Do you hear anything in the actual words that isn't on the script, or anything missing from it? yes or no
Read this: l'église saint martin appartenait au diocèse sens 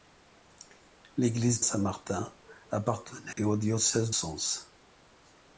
no